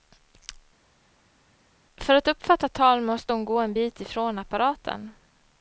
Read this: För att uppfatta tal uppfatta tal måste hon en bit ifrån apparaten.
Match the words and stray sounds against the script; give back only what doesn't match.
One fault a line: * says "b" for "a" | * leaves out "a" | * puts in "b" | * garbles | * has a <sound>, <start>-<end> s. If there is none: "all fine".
* leaves out "uppfatta tal"
* puts in "gå"